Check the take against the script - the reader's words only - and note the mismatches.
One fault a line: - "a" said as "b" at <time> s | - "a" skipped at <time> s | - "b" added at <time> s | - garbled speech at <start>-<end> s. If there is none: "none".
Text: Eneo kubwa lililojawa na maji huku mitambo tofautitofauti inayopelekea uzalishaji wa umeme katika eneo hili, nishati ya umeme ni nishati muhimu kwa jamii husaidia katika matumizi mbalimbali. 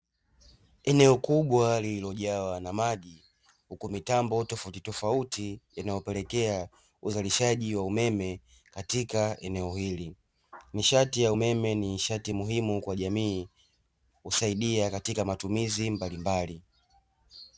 none